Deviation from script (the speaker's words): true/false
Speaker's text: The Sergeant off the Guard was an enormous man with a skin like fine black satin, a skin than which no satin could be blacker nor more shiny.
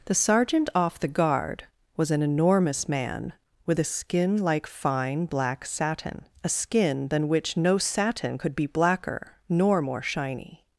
false